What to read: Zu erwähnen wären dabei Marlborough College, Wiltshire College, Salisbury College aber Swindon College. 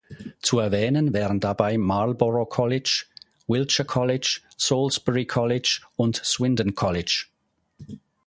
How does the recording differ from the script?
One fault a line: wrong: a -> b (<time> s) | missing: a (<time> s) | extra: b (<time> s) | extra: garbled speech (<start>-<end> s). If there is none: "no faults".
wrong: aber -> und (6.0 s)